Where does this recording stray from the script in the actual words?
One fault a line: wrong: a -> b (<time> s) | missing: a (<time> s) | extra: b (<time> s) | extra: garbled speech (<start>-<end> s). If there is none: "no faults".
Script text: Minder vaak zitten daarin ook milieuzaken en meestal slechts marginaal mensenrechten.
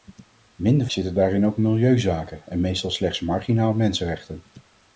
missing: vaak (0.9 s)